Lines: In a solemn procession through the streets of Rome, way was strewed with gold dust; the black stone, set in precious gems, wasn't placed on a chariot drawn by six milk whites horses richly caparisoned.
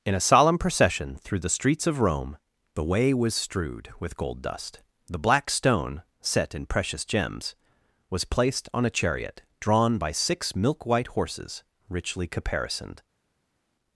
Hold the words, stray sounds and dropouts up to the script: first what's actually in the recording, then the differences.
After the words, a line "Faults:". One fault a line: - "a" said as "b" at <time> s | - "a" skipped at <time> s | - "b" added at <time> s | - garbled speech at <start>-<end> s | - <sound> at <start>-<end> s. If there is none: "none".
In a solemn procession through the streets of Rome, the way was strewed with gold dust; the black stone, set in precious gems, was placed on a chariot drawn by six milk white horses richly caparisoned.
Faults:
- "the" added at 2.7 s
- "wasn't" said as "was" at 8.1 s
- "whites" said as "white" at 10.9 s